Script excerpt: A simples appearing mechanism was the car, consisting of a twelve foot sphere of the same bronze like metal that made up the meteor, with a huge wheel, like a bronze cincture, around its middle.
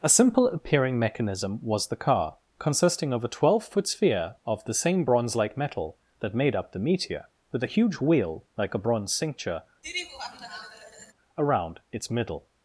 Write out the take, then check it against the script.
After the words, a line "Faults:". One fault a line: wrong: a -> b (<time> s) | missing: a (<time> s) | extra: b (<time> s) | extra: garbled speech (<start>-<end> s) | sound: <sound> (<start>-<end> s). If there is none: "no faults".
A simple appearing mechanism was the car, consisting of a twelve foot sphere of the same bronze like metal that made up the meteor, with a huge wheel, like a bronze cincture, around its middle.
Faults:
wrong: simples -> simple (0.1 s)
sound: laugh (9.8-11.1 s)